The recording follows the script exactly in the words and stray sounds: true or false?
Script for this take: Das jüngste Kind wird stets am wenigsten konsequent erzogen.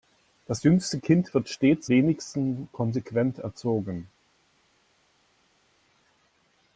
false